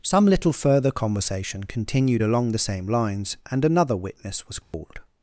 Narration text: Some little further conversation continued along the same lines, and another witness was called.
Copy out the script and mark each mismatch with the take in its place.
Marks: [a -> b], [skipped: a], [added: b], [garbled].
Some little further conversation continued along the same lines, and another witness was called.